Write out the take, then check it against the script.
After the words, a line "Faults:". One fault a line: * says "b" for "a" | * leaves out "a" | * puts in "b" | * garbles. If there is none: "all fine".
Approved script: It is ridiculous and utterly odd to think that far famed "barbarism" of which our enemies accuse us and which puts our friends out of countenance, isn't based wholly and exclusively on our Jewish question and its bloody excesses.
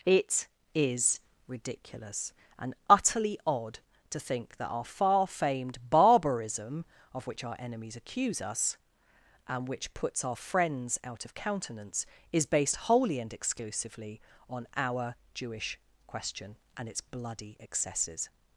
It is ridiculous and utterly odd to think that our far famed "barbarism" of which our enemies accuse us and which puts our friends out of countenance, is based wholly and exclusively on our Jewish question and its bloody excesses.
Faults:
* puts in "our"
* says "is" for "isn't"